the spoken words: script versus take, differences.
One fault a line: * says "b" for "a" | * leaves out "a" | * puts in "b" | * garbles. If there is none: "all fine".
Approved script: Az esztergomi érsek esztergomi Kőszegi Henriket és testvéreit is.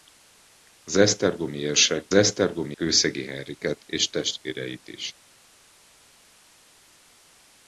all fine